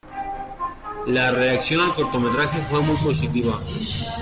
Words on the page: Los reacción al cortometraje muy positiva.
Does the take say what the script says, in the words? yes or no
no